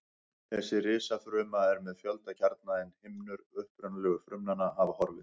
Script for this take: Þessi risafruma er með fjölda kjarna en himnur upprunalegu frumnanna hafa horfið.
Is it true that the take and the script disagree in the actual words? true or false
false